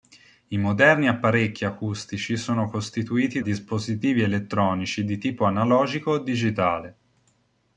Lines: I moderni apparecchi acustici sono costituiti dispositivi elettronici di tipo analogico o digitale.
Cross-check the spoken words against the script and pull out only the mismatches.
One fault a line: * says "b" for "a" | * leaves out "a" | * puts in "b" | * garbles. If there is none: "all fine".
all fine